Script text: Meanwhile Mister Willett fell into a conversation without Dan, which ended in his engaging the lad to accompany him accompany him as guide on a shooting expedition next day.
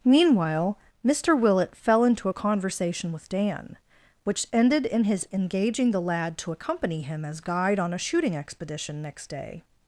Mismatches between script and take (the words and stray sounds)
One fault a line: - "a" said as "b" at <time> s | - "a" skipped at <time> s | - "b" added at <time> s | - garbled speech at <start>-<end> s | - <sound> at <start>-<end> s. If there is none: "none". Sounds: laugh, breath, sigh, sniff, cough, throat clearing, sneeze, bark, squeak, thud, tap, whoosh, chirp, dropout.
- "without" said as "with" at 3.1 s
- "accompany him" skipped at 7.2 s